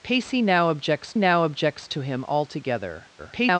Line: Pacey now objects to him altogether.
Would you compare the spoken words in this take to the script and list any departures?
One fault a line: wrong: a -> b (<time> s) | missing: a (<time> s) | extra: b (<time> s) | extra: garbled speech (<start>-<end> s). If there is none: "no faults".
extra: now objects (1.2 s)
extra: garbled speech (3.2-3.6 s)